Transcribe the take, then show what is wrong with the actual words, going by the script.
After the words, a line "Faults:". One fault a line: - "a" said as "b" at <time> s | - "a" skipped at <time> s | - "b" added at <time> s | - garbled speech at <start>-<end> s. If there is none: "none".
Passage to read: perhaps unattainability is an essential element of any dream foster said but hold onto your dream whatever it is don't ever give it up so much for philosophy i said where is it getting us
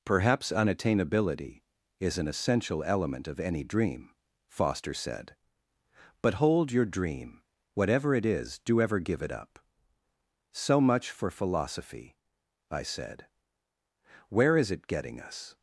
perhaps unattainability is an essential element of any dream foster said but hold your dream whatever it is do ever give it up so much for philosophy i said where is it getting us
Faults:
- "onto" skipped at 6.7 s
- "don't" said as "do" at 8.6 s